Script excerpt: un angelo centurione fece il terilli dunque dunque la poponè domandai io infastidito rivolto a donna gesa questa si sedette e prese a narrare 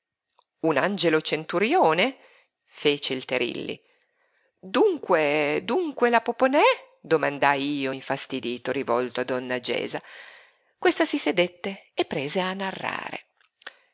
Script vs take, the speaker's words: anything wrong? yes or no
no